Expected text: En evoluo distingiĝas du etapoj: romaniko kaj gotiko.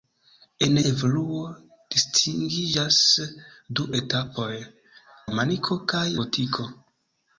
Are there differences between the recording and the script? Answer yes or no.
no